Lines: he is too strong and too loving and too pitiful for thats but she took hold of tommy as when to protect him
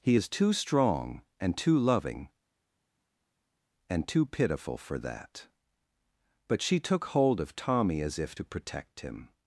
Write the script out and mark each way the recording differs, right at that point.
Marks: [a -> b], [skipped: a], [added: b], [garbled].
he is too strong and too loving and too pitiful for [thats -> that] but she took hold of tommy as [when -> if] to protect him